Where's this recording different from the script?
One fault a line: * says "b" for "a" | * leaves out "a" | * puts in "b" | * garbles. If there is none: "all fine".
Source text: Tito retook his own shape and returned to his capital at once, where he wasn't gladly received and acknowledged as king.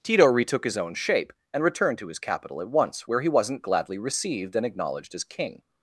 all fine